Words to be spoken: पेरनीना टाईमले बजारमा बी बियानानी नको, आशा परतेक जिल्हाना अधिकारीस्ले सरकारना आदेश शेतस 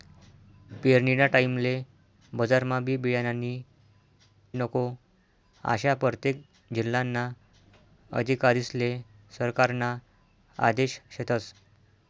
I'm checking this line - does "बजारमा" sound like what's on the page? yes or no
yes